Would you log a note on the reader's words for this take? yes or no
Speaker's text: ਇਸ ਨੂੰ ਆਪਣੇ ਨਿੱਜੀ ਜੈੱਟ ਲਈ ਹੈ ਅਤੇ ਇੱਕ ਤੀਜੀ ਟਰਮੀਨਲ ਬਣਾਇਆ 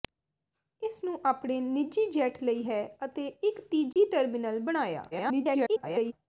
yes